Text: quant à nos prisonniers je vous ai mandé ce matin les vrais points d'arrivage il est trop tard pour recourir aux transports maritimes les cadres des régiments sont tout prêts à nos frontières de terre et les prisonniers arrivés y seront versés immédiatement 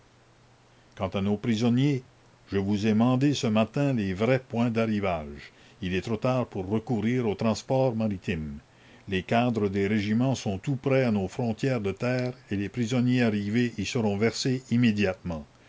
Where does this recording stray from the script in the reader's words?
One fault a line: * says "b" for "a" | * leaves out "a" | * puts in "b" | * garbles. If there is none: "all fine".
all fine